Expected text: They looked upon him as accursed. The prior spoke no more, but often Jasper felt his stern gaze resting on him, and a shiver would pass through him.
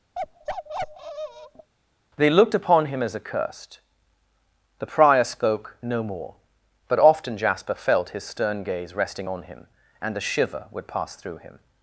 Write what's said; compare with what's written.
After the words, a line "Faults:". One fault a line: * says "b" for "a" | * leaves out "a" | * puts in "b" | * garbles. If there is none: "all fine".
They looked upon him as accursed. The prior spoke no more, but often Jasper felt his stern gaze resting on him, and a shiver would pass through him.
Faults:
all fine